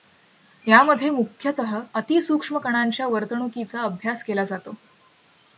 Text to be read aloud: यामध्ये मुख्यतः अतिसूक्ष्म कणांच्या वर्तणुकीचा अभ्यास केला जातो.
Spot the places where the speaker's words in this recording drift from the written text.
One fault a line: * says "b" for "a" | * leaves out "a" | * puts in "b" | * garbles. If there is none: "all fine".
all fine